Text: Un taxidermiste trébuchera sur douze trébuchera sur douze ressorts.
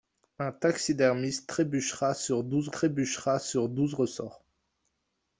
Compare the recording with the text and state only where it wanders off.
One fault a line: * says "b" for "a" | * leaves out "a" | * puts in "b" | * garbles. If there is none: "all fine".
all fine